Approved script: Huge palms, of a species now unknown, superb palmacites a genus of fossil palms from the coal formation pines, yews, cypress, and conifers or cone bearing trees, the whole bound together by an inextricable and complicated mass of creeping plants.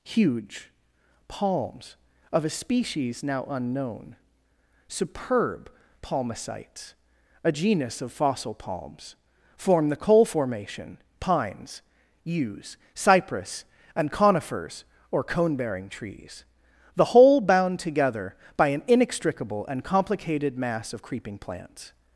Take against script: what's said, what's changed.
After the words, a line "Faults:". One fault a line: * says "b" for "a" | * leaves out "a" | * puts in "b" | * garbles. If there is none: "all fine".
Huge palms, of a species now unknown, superb palmacites a genus of fossil palms form the coal formation pines, yews, cypress, and conifers or cone bearing trees, the whole bound together by an inextricable and complicated mass of creeping plants.
Faults:
* says "form" for "from"